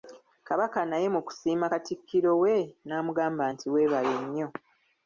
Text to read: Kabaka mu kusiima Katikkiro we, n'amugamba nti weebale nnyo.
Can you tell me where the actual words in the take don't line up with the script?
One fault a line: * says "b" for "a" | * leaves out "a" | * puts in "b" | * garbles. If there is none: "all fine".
* puts in "naye"